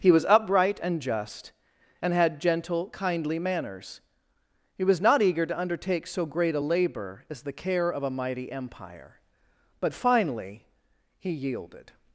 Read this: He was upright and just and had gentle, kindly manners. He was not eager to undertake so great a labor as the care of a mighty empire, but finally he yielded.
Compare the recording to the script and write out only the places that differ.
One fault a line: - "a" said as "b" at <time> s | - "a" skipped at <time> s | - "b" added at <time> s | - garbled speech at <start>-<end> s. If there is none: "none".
none